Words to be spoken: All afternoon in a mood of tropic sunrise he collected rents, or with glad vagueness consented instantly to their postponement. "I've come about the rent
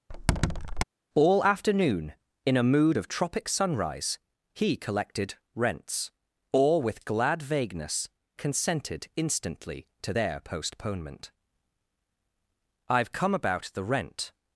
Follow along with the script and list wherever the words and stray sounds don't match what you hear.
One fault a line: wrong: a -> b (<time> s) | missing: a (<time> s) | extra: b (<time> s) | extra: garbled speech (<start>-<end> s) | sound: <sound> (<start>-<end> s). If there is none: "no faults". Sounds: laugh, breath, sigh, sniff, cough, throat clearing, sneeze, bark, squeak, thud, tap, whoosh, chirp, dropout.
sound: squeak (0.1-0.8 s)